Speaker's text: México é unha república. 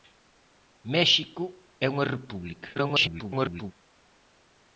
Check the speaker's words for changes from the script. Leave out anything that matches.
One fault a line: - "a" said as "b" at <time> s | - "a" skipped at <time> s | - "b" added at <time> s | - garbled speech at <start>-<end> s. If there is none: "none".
- garbled speech at 2.7-3.7 s